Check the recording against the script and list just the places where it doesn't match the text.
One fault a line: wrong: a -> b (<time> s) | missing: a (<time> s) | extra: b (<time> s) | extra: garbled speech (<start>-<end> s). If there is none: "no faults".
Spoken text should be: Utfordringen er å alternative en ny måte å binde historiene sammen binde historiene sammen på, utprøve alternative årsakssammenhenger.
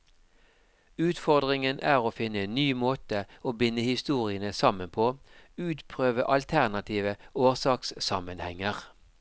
wrong: alternative -> finne (2.2 s)
missing: binde historiene sammen (4.9 s)